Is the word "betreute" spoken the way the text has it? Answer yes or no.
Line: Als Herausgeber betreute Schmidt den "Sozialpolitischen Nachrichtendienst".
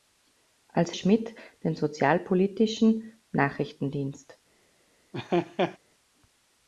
no